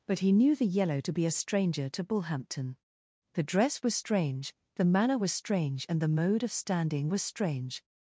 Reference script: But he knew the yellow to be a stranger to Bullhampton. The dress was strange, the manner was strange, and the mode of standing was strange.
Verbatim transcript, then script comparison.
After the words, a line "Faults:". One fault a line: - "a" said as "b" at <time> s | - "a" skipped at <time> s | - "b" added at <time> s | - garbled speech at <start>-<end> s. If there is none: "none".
But he knew the yellow to be a stranger to Bullhampton. The dress was strange, the manner was strange, and the mode of standing was strange.
Faults:
none